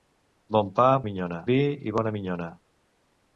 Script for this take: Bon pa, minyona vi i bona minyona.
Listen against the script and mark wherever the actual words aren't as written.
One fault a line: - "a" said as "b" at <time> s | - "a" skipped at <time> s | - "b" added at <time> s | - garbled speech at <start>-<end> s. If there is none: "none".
none